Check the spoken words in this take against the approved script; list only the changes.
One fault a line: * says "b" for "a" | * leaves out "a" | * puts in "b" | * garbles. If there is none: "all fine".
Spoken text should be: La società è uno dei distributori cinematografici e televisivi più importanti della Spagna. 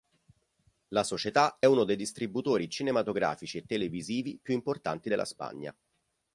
all fine